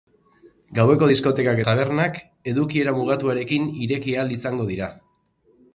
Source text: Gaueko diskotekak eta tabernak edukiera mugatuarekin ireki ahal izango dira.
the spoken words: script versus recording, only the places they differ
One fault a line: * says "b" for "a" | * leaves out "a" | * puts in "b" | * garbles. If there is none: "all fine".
* leaves out "eta"